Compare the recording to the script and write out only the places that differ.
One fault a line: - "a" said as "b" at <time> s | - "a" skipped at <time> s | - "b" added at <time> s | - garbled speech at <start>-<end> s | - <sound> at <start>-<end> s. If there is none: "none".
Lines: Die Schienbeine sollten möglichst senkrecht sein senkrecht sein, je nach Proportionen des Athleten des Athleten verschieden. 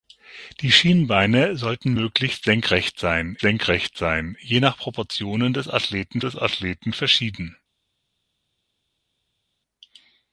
none